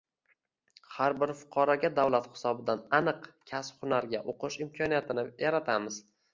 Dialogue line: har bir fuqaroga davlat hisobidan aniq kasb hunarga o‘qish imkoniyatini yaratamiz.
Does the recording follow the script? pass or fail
pass